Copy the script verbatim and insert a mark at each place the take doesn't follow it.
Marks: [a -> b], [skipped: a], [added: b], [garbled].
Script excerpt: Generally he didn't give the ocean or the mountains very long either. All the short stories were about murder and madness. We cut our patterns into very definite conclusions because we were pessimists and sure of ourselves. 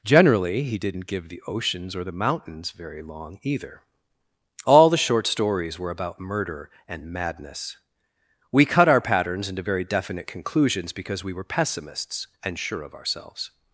Generally he didn't give the [ocean -> oceans] or the mountains very long either. All the short stories were about murder and madness. We cut our patterns into very definite conclusions because we were pessimists and sure of ourselves.